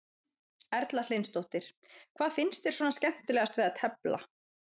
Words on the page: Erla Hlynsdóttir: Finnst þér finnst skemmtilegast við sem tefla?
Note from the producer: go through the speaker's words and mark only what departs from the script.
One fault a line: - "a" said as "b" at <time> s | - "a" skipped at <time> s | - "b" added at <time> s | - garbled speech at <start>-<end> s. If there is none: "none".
- "Hvað" added at 1.9 s
- "finnst" said as "svona" at 2.8 s
- "sem" said as "að" at 3.7 s